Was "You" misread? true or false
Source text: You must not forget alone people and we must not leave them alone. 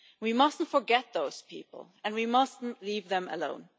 true